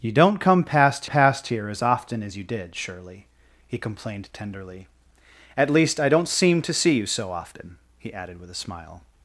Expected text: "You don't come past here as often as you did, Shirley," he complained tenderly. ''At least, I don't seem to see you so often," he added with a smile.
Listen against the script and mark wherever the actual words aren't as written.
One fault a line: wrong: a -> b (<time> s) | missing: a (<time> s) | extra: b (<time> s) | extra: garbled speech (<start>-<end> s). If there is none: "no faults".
extra: past (1.0 s)